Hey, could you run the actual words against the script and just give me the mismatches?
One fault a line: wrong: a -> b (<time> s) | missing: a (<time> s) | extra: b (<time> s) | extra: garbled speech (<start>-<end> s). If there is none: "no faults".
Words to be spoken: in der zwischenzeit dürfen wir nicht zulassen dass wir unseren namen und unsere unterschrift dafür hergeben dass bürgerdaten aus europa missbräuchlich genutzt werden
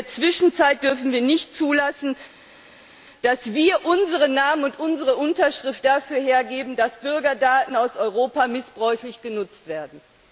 no faults